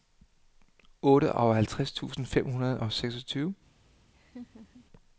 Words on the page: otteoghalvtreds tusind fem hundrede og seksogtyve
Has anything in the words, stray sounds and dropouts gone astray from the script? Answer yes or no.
yes